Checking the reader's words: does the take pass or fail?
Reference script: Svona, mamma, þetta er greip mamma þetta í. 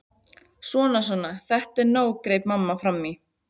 fail